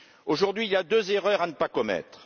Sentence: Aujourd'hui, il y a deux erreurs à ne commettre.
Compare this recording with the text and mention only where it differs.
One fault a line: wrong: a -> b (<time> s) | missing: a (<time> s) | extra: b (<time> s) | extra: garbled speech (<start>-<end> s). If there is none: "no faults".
extra: pas (1.5 s)